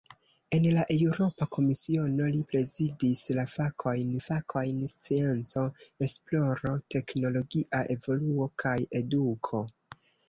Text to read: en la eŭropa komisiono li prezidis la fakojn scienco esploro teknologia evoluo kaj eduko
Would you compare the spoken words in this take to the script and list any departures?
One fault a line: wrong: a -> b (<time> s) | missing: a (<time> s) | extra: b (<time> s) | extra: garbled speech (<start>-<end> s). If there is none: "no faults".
extra: fakojn (4.2 s)